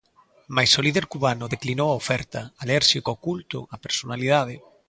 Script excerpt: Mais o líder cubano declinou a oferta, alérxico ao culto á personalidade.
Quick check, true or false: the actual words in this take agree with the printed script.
true